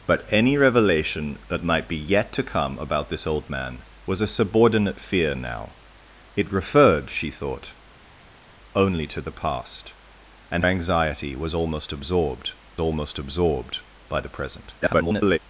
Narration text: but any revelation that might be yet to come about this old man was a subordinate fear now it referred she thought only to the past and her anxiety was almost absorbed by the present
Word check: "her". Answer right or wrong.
wrong